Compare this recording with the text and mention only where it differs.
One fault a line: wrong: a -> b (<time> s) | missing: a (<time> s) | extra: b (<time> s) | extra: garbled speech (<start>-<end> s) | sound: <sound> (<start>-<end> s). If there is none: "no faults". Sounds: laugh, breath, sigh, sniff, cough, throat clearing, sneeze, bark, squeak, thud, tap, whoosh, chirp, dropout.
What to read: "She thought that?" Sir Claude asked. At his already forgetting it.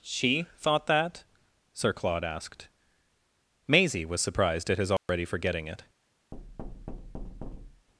extra: Maisie was surprised (3.7 s)
sound: dropout (5.0-5.1 s)
sound: thud (6.3-7.9 s)